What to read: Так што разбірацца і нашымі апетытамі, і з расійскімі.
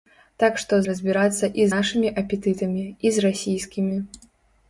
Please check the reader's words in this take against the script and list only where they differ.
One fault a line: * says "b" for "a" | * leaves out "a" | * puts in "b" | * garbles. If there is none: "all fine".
all fine